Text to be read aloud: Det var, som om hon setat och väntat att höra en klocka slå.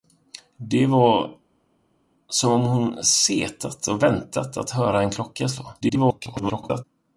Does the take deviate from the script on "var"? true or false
false